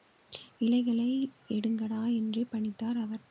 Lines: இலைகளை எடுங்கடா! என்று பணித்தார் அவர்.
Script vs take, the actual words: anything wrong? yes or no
no